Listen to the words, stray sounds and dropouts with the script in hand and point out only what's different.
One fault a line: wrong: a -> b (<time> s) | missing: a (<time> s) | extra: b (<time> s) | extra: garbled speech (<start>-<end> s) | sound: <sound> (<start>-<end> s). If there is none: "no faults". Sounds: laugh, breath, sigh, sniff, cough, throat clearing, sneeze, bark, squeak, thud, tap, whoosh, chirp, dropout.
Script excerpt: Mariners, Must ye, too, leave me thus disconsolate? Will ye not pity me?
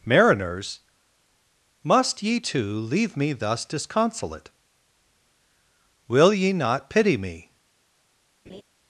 sound: laugh (8.5-8.6 s)